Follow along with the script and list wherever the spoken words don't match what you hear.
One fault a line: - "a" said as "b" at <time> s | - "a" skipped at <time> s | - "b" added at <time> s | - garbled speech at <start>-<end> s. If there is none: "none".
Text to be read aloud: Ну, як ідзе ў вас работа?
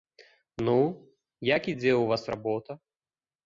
none